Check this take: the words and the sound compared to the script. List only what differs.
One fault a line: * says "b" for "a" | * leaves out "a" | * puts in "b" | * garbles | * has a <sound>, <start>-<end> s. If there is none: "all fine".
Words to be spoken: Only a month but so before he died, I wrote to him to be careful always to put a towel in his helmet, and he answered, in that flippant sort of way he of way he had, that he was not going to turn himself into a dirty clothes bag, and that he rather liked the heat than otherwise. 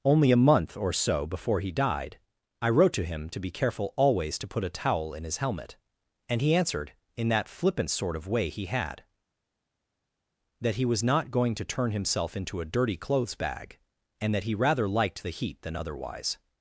* says "or" for "but"
* leaves out "of way he"